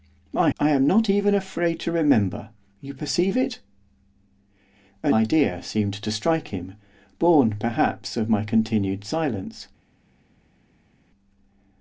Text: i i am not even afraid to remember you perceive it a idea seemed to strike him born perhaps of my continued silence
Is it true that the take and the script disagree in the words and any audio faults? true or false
false